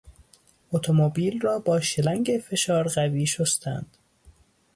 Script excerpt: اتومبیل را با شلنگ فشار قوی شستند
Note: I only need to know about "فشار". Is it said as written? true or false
true